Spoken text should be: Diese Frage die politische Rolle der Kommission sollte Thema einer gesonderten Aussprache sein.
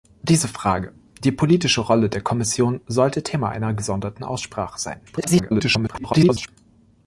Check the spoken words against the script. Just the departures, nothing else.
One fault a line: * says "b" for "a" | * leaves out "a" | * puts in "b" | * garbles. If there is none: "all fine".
* garbles